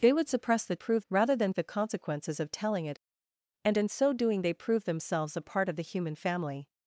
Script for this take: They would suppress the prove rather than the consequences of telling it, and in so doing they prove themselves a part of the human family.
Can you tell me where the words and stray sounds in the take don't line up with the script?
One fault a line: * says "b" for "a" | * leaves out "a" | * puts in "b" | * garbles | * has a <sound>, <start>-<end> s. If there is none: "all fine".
all fine